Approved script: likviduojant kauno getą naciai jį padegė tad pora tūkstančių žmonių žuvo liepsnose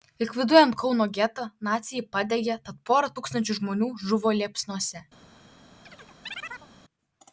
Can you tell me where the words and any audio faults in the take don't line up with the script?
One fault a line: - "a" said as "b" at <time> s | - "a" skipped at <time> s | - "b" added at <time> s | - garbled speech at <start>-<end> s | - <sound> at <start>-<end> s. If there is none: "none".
- chirp at 5.8-6.7 s